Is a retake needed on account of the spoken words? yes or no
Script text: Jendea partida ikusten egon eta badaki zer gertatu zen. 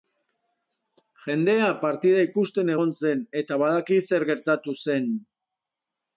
yes